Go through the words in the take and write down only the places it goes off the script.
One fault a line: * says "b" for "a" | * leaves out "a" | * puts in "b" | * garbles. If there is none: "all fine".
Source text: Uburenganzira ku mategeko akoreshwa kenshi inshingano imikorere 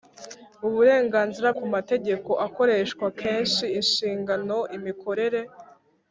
all fine